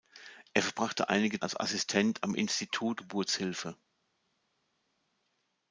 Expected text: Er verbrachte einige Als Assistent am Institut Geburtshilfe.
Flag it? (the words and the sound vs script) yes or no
no